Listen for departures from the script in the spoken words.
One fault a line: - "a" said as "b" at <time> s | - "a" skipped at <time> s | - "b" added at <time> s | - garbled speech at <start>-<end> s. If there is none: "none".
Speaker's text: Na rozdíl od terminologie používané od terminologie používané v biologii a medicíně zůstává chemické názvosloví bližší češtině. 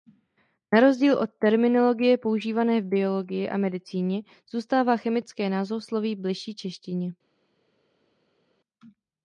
- "od terminologie používané" skipped at 2.8 s